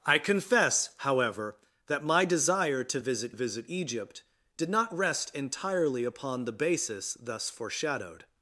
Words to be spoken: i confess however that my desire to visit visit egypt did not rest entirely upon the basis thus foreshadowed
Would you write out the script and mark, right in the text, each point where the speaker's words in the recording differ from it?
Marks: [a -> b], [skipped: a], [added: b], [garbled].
i confess however that my desire to visit visit egypt did not rest entirely upon the basis thus foreshadowed